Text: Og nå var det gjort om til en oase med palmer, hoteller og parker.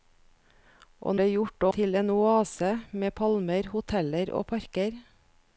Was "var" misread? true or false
true